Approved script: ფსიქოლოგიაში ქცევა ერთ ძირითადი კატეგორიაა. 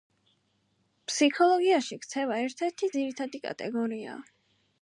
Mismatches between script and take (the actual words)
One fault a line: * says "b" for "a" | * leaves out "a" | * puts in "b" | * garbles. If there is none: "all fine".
* puts in "ერთი"